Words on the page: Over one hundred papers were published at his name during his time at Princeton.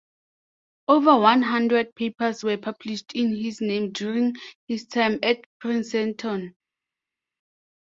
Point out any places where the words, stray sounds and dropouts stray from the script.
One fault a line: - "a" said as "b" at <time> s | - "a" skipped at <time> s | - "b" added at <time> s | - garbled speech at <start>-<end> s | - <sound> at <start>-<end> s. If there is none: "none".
- "at" said as "in" at 3.1 s